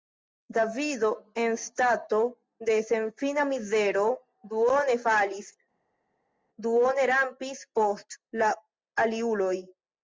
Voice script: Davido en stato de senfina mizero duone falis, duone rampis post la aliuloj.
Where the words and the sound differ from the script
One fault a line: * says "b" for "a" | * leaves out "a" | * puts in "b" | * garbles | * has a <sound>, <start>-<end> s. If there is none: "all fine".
all fine